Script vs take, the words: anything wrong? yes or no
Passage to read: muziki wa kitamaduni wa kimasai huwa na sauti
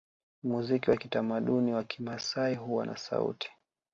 no